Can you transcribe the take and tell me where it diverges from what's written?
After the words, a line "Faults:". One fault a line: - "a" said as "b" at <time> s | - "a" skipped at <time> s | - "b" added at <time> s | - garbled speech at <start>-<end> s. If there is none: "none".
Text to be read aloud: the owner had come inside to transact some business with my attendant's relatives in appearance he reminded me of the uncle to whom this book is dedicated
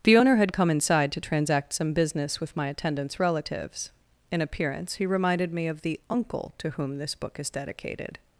the owner had come inside to transact some business with my attendant's relatives in appearance he reminded me of the uncle to whom this book is dedicated
Faults:
none